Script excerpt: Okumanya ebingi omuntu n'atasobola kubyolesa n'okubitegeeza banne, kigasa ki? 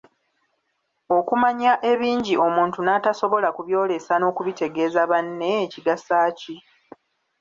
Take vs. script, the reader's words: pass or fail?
pass